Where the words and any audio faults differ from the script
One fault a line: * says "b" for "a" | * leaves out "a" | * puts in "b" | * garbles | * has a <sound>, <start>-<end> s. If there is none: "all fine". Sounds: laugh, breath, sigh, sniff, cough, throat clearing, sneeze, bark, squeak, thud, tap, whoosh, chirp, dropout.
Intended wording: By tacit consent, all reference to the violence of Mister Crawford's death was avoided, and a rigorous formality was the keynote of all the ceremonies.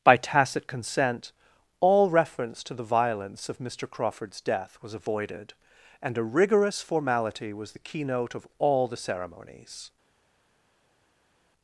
all fine